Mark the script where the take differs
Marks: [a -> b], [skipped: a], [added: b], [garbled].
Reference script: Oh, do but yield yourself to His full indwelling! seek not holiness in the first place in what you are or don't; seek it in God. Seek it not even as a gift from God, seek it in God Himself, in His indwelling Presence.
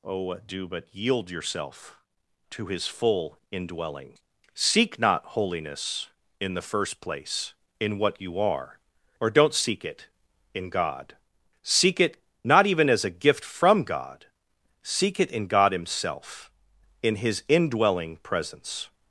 Oh, do but yield yourself to His full indwelling! seek not holiness in the first place in what you are or don't; seek it in God. Seek it not even as a gift from God, seek it in God Himself, in His indwelling Presence.